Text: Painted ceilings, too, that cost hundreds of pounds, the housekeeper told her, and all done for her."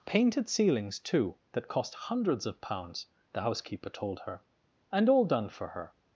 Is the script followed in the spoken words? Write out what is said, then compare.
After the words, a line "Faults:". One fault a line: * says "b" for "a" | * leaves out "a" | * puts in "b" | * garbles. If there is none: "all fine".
Painted ceilings, too, that cost hundreds of pounds, the housekeeper told her, and all done for her."
Faults:
all fine